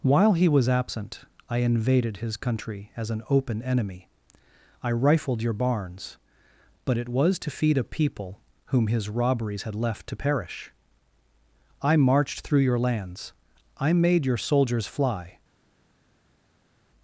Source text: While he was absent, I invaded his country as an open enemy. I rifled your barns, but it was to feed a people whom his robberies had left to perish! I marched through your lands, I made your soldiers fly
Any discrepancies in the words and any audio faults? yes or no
no